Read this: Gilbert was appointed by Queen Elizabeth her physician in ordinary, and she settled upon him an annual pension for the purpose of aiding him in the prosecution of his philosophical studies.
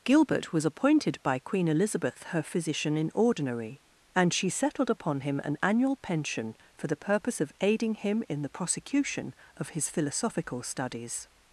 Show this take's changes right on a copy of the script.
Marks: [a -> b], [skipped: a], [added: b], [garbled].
Gilbert was appointed by Queen Elizabeth her physician in ordinary, and she settled upon him an annual pension for the purpose of aiding him in the prosecution of his philosophical studies.